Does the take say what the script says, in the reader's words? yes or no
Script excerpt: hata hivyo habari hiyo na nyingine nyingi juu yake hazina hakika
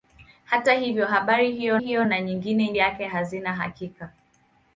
no